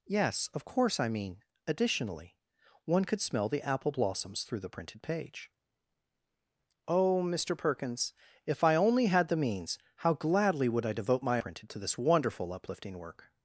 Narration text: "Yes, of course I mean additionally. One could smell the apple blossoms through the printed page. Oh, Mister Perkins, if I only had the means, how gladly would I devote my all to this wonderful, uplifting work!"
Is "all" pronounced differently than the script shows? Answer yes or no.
yes